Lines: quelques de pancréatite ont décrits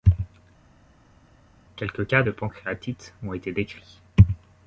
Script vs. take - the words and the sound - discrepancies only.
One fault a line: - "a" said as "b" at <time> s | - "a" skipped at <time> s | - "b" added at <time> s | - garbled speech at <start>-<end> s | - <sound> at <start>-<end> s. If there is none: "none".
- "cas" added at 2.1 s
- "été" added at 3.3 s